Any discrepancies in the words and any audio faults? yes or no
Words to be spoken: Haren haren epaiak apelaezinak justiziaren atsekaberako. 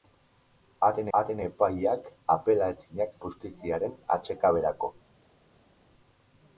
no